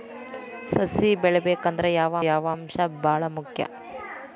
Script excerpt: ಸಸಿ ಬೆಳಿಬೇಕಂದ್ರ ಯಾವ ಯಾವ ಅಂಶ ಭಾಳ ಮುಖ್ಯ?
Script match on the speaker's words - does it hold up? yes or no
yes